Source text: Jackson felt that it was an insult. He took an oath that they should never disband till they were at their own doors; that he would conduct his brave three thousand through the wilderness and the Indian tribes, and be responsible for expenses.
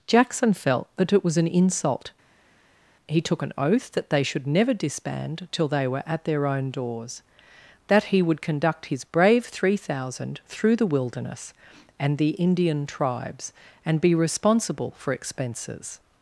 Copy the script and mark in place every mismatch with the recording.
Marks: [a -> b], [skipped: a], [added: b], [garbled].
Jackson felt that it was an insult. He took an oath that they should never disband till they were at their own doors; that he would conduct his brave three thousand through the wilderness and the Indian tribes, and be responsible for expenses.